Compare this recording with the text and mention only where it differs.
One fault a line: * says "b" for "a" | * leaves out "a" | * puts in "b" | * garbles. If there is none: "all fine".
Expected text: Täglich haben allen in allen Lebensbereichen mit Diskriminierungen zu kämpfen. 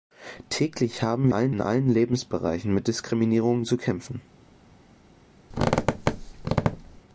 all fine